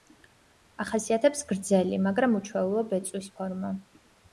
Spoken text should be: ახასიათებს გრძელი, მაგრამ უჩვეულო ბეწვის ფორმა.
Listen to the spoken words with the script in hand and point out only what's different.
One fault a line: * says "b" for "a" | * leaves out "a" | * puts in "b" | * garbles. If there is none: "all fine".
all fine